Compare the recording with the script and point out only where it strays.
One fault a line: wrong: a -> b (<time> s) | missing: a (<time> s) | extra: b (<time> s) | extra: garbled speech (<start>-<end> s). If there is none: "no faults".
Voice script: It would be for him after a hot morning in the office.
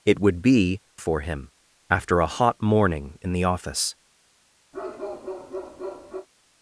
no faults